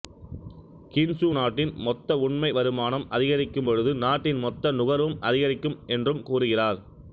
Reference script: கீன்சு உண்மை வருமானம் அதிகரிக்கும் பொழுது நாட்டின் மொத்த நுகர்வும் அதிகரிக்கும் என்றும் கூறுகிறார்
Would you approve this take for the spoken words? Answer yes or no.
no